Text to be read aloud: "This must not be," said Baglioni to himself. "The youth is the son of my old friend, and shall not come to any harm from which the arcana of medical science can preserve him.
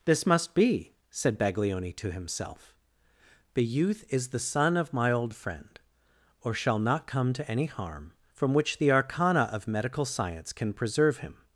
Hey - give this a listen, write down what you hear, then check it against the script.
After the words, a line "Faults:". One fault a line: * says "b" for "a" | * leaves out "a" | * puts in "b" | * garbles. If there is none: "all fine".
"This must be," said Baglioni to himself. "The youth is the son of my old friend, or shall not come to any harm from which the arcana of medical science can preserve him.
Faults:
* leaves out "not"
* says "or" for "and"